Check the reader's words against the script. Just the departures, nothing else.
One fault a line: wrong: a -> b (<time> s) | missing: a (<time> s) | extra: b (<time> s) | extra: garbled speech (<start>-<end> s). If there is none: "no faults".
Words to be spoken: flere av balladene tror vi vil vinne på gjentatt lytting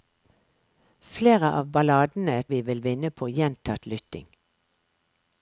missing: tror (2.4 s)